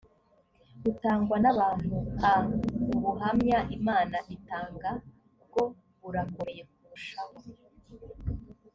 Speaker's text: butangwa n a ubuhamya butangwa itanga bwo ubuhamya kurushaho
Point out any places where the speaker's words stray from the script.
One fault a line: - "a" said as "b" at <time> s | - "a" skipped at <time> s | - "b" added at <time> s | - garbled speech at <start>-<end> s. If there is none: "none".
- "abantu" added at 1.5 s
- "butangwa" said as "imana" at 3.8 s
- "ubuhamya" said as "burakomeye" at 6.0 s